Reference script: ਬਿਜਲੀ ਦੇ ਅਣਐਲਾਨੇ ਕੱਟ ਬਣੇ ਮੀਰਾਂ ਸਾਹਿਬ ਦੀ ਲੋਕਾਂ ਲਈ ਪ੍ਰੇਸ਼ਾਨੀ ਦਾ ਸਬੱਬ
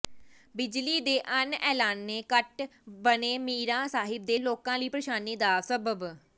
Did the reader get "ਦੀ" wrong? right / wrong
wrong